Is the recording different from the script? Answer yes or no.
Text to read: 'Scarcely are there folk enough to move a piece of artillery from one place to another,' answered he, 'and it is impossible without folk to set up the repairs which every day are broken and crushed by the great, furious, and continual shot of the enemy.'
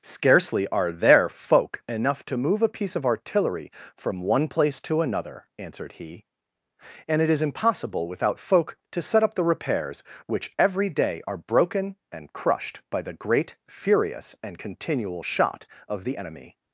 no